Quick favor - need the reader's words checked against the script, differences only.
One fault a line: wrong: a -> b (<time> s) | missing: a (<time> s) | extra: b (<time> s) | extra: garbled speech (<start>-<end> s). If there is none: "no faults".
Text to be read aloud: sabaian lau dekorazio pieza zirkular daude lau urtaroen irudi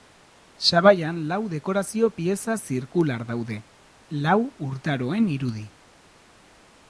no faults